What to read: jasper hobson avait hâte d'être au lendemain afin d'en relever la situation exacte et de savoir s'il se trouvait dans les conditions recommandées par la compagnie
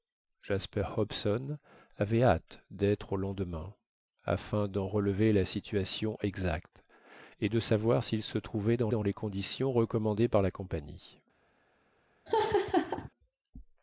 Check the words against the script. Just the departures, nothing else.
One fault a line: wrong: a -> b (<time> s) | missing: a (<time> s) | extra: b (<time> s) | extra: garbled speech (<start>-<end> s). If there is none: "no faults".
extra: dans (8.9 s)